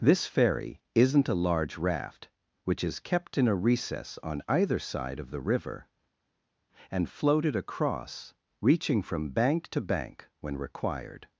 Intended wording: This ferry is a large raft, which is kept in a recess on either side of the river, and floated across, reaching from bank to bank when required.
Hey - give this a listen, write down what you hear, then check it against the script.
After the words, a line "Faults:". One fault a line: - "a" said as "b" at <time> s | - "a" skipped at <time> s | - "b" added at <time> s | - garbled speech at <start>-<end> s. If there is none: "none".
This ferry isn't a large raft, which is kept in a recess on either side of the river, and floated across, reaching from bank to bank when required.
Faults:
- "is" said as "isn't" at 0.9 s